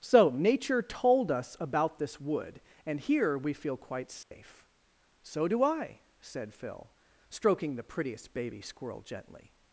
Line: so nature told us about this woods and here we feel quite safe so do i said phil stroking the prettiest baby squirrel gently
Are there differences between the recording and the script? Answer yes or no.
yes